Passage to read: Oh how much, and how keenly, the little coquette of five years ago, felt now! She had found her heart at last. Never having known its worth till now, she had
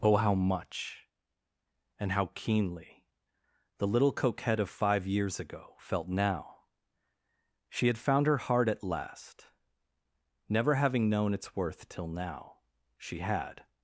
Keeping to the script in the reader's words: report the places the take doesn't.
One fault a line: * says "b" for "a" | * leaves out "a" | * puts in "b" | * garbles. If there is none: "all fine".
all fine